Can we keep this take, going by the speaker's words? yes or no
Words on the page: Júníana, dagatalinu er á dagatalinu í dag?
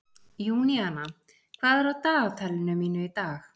no